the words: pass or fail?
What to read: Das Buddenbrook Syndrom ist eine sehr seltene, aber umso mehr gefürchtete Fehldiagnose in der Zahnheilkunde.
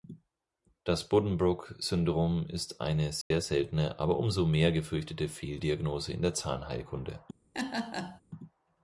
pass